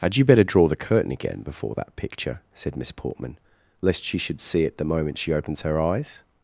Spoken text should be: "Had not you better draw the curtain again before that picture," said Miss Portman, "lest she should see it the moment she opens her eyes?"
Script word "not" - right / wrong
wrong